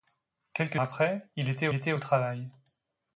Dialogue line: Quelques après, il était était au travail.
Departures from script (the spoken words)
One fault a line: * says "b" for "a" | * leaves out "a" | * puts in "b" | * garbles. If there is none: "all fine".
all fine